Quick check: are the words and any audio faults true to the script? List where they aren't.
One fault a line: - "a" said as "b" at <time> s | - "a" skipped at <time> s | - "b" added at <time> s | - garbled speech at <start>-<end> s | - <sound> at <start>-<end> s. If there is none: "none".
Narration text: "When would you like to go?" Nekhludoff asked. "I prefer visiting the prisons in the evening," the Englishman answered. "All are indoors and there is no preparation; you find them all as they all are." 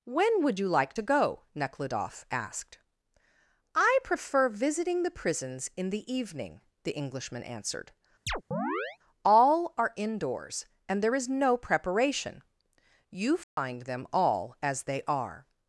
- chirp at 8.3-9.0 s
- dropout at 13.4-13.6 s
- "all" skipped at 15.0 s